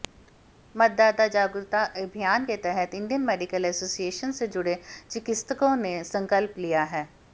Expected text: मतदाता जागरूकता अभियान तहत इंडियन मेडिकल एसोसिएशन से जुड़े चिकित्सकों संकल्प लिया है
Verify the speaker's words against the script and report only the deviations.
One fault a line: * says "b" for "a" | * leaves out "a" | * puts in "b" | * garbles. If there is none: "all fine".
* puts in "के"
* puts in "ने"